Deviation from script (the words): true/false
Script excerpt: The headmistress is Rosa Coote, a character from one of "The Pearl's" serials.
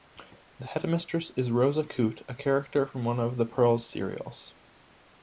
false